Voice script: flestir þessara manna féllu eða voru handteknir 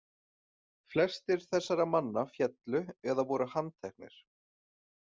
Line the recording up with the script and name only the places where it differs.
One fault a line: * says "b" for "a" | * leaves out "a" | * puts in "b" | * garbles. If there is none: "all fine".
all fine